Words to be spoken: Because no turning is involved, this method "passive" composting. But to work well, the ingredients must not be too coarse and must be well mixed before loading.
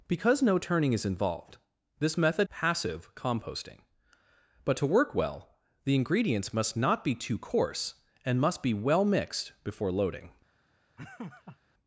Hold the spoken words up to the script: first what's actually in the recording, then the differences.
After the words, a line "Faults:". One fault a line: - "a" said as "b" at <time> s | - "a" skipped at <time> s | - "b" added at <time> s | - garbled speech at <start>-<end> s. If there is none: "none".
Because no turning is involved, this method "passive" composting. But to work well, the ingredients must not be too coarse and must be well mixed before loading.
Faults:
none